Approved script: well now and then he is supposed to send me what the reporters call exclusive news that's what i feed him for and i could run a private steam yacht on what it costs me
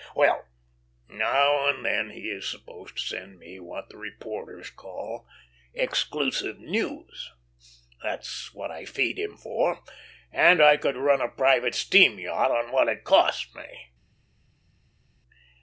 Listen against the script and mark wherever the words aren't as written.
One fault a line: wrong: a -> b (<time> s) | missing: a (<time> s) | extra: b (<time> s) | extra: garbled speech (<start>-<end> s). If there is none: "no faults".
no faults